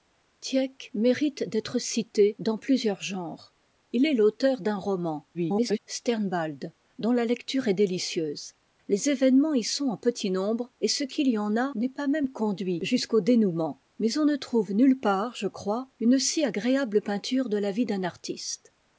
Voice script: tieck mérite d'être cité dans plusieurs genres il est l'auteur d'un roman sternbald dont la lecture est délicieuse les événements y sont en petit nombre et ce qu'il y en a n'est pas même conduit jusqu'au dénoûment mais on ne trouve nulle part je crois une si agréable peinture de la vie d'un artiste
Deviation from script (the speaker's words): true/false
true